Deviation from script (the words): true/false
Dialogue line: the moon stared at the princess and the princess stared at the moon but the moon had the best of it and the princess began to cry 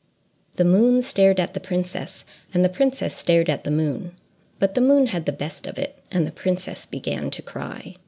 false